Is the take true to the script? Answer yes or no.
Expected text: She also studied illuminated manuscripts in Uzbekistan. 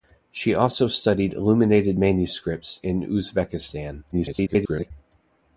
no